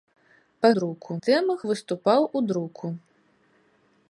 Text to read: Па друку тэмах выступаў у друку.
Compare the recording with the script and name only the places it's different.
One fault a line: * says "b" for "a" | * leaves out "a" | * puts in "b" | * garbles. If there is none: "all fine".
all fine